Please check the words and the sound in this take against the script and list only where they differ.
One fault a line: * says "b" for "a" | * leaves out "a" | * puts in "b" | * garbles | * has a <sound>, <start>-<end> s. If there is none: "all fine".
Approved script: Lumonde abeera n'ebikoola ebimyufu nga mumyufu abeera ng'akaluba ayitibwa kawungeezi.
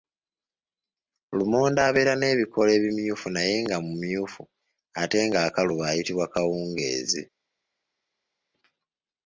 * puts in "naye"
* says "ate" for "abeera"